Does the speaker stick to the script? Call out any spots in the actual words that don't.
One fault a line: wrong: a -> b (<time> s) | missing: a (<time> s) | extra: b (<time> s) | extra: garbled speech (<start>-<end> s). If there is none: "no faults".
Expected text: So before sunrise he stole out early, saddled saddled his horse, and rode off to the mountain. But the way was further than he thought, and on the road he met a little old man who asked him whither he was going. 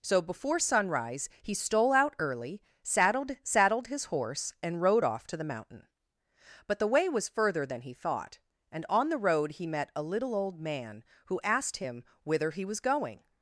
no faults